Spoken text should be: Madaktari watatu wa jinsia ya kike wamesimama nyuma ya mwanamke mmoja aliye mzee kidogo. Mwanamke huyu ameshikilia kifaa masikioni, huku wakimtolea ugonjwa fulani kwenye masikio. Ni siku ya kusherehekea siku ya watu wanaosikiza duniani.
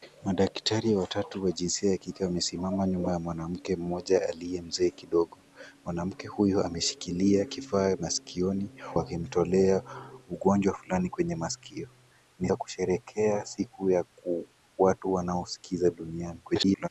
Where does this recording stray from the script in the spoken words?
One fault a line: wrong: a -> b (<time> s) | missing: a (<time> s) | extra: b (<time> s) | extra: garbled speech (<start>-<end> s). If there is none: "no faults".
missing: huku (8.7 s)
missing: siku (12.5 s)
extra: garbled speech (16.4-16.9 s)